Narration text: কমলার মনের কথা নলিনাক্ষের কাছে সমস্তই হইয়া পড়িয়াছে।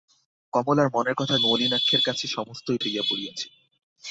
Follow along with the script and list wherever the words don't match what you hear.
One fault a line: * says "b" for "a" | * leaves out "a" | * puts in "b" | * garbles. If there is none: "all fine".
all fine